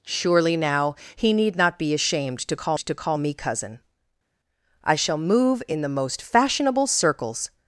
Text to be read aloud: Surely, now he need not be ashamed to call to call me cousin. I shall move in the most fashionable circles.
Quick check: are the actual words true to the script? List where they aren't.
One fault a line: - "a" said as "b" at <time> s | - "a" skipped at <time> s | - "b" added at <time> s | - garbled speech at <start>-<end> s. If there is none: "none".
none